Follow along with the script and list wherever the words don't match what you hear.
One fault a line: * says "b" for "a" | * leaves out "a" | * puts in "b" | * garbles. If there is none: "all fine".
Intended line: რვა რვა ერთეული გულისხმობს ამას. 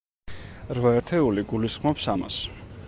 * leaves out "რვა"